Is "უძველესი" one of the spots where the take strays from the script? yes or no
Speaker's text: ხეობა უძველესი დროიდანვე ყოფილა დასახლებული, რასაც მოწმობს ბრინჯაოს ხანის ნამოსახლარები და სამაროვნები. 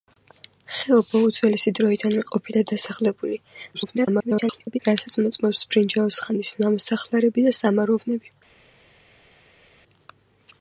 no